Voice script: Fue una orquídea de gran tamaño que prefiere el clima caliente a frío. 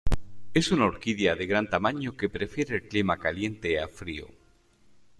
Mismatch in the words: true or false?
true